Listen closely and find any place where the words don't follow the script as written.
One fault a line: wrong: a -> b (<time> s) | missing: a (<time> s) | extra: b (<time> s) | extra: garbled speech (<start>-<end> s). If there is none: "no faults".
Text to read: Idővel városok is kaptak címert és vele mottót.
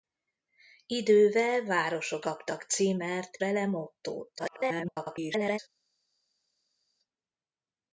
missing: is (2.2 s)
missing: és (3.4 s)
extra: garbled speech (4.4-5.6 s)